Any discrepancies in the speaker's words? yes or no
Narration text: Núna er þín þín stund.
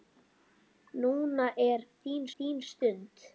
no